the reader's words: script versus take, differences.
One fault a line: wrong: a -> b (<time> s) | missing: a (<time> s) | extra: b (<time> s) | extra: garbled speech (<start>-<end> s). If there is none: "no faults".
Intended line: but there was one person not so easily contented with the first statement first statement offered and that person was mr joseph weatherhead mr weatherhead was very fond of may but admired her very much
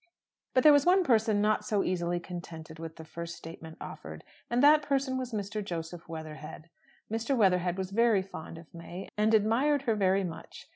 missing: first statement (3.8 s)
wrong: but -> and (9.2 s)